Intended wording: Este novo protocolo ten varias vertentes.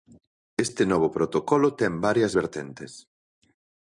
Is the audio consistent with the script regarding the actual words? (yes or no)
yes